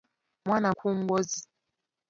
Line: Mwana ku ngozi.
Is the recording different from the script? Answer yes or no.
no